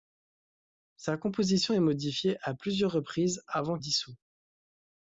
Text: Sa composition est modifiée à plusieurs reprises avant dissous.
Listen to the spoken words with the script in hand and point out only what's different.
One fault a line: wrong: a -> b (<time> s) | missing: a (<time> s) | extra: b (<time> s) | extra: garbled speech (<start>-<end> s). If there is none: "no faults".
no faults